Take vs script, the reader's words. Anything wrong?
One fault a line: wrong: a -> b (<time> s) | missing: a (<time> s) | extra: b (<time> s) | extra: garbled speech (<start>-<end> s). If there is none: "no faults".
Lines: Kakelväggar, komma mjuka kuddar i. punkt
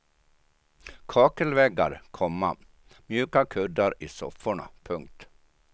extra: sofforna (4.1 s)